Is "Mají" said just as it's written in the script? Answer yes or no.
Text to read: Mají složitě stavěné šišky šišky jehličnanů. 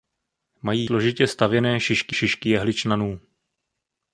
yes